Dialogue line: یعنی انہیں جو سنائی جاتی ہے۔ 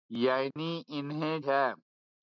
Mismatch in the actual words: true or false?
true